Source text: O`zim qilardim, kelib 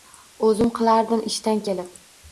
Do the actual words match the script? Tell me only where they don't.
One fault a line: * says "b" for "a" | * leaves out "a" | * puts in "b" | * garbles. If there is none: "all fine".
* puts in "ishdan"